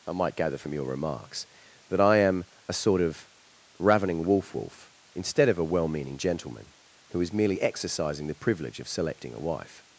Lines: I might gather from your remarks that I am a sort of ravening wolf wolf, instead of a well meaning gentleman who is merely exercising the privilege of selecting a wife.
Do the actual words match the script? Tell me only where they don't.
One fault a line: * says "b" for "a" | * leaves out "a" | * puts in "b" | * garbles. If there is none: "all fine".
all fine